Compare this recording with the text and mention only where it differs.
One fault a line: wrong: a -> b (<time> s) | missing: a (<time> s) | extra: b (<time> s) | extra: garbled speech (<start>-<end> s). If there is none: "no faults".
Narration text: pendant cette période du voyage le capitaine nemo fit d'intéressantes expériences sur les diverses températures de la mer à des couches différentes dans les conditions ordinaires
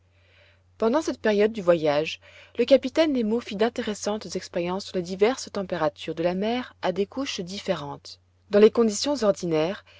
no faults